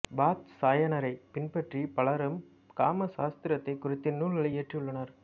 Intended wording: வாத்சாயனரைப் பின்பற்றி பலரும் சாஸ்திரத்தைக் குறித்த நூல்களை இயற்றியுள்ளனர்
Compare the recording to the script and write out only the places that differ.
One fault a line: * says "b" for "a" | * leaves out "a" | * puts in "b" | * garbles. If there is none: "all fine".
* puts in "காம"